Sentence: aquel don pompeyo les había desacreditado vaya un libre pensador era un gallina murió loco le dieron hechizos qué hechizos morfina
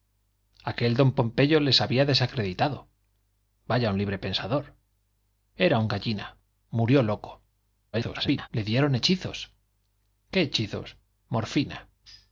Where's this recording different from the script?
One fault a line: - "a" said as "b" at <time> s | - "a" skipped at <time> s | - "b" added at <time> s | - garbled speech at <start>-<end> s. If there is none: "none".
- garbled speech at 7.9-8.5 s